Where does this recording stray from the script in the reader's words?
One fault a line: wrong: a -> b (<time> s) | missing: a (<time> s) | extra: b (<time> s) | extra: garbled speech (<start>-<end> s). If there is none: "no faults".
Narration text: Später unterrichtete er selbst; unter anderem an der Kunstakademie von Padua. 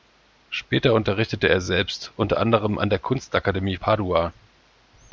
missing: von (3.8 s)